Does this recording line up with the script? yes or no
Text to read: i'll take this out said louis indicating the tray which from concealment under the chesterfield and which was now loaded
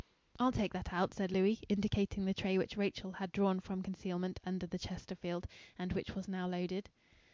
no